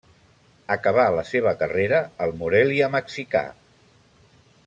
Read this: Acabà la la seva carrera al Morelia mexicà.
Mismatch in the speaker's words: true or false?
true